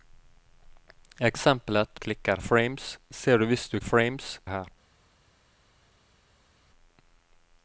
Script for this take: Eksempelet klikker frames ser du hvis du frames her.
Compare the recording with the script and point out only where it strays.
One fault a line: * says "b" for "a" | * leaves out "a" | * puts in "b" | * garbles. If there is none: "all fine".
all fine